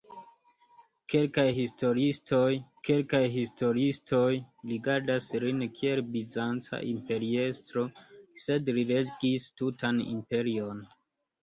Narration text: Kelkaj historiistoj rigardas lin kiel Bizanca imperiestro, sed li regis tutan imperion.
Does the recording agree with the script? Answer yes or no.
no